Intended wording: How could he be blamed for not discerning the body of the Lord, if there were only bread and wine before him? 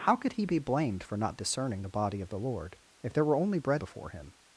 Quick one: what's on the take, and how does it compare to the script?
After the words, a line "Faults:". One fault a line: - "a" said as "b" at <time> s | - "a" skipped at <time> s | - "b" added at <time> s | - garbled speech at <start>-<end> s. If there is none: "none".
How could he be blamed for not discerning the body of the Lord, if there were only bread before him?
Faults:
- "and wine" skipped at 3.8 s